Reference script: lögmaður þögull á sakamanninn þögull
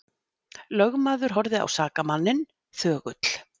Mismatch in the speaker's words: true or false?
true